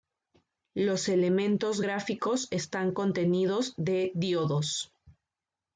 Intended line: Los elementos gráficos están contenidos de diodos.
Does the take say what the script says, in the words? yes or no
yes